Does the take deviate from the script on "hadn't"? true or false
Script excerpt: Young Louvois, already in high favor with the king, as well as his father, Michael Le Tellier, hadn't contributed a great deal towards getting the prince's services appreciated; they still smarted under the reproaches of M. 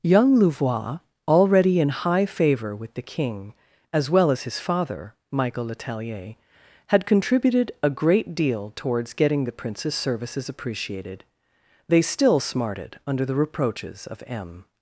true